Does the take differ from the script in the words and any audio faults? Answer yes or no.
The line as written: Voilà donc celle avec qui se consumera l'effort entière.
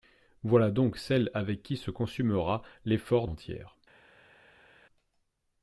no